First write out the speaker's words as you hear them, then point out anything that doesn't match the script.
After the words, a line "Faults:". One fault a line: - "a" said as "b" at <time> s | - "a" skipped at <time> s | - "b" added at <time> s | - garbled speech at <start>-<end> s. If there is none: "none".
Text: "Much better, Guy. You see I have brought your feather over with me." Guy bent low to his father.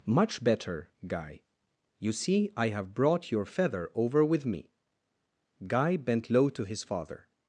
"Much better, Guy. You see I have brought your feather over with me." Guy bent low to his father.
Faults:
none